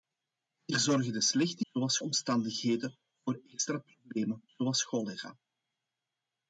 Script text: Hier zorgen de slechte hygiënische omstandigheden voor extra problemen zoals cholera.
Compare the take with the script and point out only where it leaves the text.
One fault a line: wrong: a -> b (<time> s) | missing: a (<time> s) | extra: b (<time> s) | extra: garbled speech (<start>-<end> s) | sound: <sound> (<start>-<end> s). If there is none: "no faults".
wrong: hygiënische -> zoals (1.6 s)